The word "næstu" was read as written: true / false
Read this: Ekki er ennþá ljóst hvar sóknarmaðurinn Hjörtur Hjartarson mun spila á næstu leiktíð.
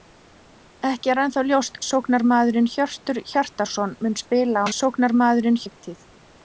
false